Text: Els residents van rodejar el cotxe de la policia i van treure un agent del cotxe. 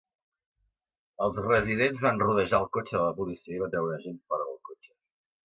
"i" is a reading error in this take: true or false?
false